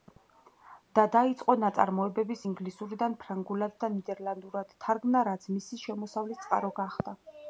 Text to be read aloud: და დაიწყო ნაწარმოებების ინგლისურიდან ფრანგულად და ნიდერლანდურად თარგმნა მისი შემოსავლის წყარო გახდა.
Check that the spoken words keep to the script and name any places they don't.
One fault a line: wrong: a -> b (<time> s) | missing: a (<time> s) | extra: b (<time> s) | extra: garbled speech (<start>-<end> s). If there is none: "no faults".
extra: რაც (5.3 s)